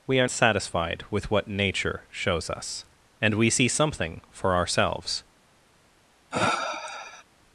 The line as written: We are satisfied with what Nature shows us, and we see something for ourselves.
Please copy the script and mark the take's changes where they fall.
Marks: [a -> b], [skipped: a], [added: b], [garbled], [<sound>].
We are satisfied with what Nature shows us, and we see something for ourselves. [sniff]